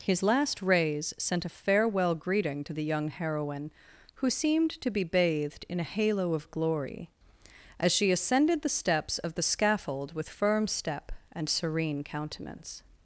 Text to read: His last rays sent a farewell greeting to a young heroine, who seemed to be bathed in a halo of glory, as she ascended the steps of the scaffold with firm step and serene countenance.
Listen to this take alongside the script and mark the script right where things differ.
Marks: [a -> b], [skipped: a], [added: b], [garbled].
His last rays sent a farewell greeting to [a -> the] young heroine, who seemed to be bathed in a halo of glory, as she ascended the steps of the scaffold with firm step and serene countenance.